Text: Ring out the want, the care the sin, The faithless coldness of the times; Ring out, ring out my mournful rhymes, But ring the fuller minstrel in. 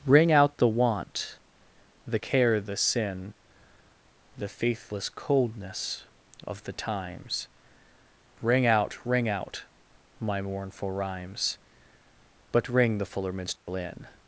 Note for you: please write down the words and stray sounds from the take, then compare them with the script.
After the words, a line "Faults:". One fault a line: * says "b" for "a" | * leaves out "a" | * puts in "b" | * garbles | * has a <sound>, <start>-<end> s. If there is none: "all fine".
Ring out the want, the care the sin, The faithless coldness of the times; Ring out, ring out my mournful rhymes, But ring the fuller minstrel in.
Faults:
* has a dropout, 13.6-13.7 s